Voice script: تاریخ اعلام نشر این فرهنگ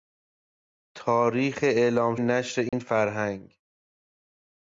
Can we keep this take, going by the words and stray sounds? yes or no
no